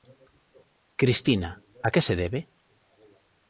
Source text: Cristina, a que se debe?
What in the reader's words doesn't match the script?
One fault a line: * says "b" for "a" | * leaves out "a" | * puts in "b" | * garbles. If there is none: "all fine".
all fine